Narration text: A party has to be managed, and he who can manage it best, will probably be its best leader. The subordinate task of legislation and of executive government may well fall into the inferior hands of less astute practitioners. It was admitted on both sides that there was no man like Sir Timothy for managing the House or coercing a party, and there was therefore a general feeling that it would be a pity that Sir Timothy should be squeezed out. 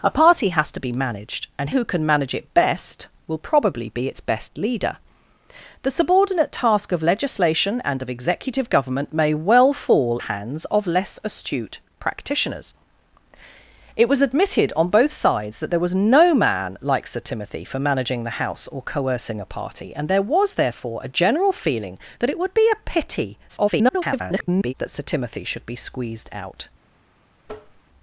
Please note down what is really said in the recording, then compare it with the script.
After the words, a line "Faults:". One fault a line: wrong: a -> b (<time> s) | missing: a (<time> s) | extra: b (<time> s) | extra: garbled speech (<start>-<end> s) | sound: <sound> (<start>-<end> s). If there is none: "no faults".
A party has to be managed, and who can manage it best, will probably be its best leader. The subordinate task of legislation and of executive government may well fall hands of less astute practitioners. It was admitted on both sides that there was no man like Sir Timothy for managing the House or coercing a party, and there was therefore a general feeling that it would be a pity [garbled] that Sir Timothy should be squeezed out.
Faults:
missing: he (1.7 s)
missing: into the inferior (10.2 s)
extra: garbled speech (23.5-24.7 s)
sound: tap (27.4-27.8 s)